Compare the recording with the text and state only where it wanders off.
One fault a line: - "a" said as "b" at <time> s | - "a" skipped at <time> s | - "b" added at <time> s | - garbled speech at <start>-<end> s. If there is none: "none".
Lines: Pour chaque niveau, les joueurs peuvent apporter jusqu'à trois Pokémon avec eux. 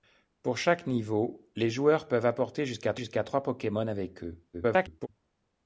- "jusqu'à" added at 3.0 s
- garbled speech at 4.5-5.1 s